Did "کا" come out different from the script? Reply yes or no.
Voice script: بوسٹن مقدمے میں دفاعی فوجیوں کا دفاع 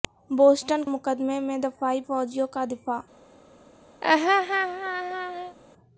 no